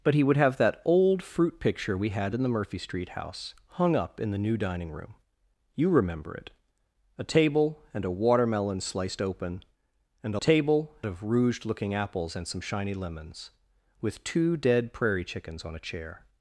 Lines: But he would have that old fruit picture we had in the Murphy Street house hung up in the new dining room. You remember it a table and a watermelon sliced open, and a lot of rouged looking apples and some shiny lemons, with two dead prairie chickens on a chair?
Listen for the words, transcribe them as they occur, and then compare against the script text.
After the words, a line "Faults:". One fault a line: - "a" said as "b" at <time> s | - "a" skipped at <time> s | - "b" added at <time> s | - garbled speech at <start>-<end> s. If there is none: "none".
But he would have that old fruit picture we had in the Murphy Street house hung up in the new dining room. You remember it a table and a watermelon sliced open, and a table of rouged looking apples and some shiny lemons, with two dead prairie chickens on a chair?
Faults:
- "lot" said as "table" at 10.4 s